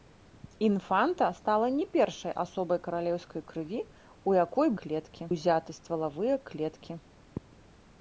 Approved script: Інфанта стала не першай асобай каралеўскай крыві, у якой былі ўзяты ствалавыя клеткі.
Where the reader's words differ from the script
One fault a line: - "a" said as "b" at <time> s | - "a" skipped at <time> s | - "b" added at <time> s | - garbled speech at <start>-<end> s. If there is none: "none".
- "былі" said as "клеткі" at 4.8 s